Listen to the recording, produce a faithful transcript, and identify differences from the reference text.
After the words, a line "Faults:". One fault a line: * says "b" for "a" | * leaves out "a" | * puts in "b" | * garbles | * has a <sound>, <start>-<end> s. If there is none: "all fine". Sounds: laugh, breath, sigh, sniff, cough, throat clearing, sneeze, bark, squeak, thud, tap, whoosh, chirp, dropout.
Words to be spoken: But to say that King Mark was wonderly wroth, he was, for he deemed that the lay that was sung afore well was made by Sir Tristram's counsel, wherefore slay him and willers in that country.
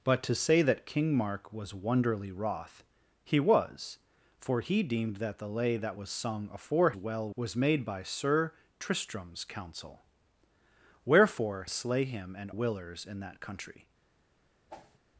But to say that King Mark was wonderly wroth, he was, for he deemed that the lay that was sung afore well was made by Sir Tristram's counsel, wherefore slay him and willers in that country.
Faults:
* has a whoosh, 14.7-15.0 s